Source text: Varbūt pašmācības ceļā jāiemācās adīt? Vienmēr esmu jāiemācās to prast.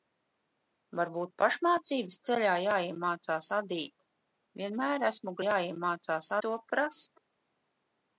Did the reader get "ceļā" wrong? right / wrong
right